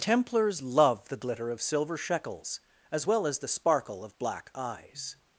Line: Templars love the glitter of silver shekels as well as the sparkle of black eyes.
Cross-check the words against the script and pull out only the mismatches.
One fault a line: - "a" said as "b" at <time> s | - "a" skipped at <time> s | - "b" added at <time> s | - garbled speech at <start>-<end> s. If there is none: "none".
none